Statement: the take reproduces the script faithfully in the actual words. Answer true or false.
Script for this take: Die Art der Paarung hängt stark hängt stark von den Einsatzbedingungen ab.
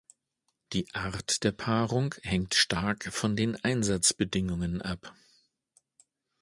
false